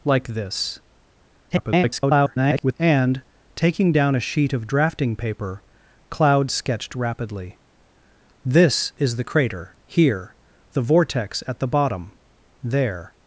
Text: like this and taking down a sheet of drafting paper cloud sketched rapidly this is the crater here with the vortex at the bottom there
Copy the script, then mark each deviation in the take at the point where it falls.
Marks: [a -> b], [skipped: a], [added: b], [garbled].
like this [garbled] and taking down a sheet of drafting paper cloud sketched rapidly this is the crater here [skipped: with] the vortex at the bottom there